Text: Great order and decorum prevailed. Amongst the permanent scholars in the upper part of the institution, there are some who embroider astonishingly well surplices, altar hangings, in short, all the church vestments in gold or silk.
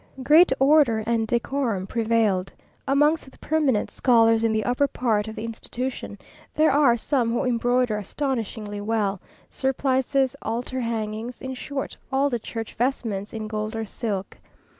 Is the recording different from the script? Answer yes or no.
no